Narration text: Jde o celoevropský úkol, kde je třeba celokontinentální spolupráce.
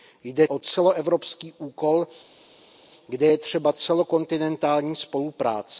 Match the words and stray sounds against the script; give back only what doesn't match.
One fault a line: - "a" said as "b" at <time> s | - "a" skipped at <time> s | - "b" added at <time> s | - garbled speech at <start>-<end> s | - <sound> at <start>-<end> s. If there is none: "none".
none